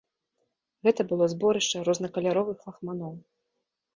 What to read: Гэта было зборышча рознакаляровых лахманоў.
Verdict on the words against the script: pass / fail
pass